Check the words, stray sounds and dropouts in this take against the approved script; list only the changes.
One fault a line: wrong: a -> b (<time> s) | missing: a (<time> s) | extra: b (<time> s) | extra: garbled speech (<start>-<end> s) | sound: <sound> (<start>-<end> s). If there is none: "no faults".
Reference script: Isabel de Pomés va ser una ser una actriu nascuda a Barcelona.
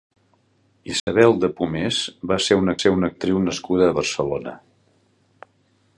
sound: dropout (1.0-1.1 s)